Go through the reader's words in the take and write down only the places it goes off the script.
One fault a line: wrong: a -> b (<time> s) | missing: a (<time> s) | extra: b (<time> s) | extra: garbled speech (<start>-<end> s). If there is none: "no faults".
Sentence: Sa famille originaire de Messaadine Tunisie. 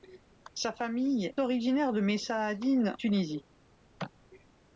no faults